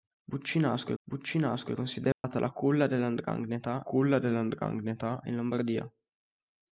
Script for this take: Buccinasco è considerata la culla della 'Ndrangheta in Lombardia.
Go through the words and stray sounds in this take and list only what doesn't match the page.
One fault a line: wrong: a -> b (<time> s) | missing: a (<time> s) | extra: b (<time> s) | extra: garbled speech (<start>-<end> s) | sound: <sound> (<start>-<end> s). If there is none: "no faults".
extra: buccinasco (1.0 s)
sound: dropout (2.1-2.2 s)
extra: culla della Ndrangheta (3.8 s)